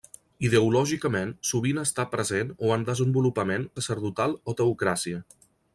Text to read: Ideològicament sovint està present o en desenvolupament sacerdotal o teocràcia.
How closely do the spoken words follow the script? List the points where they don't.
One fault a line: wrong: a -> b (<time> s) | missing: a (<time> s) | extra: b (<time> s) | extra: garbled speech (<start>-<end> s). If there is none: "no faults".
no faults